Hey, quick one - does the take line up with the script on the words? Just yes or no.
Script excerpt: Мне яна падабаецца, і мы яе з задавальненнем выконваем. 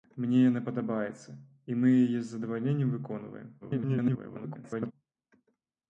no